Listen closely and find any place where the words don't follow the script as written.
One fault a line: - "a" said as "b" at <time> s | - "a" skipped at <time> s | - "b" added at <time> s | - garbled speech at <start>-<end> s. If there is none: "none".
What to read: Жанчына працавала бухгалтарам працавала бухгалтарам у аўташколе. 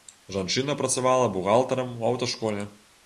- "працавала бухгалтарам" skipped at 1.9 s